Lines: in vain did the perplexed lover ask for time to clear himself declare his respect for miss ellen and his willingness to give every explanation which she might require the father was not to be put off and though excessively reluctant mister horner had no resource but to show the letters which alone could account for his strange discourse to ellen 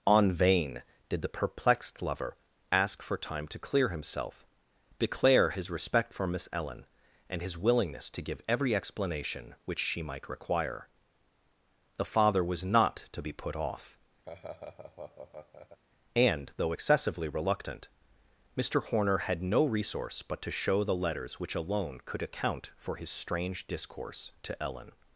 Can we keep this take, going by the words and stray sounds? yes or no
no